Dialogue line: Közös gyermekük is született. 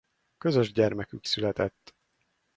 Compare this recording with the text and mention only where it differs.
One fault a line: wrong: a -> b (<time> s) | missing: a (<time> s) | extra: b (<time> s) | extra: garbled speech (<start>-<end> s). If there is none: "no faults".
missing: is (1.3 s)